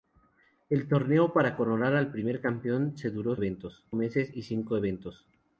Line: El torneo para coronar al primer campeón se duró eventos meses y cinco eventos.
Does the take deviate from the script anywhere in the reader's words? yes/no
no